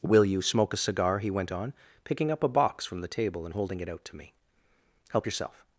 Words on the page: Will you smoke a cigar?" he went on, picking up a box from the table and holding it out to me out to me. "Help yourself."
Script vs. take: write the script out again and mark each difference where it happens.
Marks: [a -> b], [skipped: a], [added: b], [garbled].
Will you smoke a cigar?" he went on, picking up a box from the table and holding it out to me [skipped: out to me.] "Help yourself."